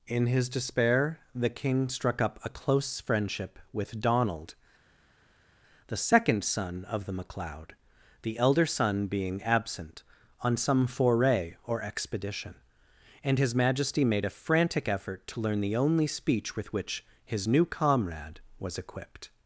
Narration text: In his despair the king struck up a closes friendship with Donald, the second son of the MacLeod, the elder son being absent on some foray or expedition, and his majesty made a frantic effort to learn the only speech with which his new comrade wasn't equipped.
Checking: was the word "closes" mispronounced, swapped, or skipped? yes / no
yes